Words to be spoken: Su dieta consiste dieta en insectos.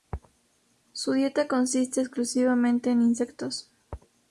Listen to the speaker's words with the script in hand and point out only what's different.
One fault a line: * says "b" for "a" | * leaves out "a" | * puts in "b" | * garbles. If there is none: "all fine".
* says "exclusivamente" for "dieta"